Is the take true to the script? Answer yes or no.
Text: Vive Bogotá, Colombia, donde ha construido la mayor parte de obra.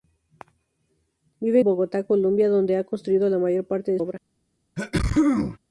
yes